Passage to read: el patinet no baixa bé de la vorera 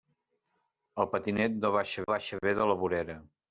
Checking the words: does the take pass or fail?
fail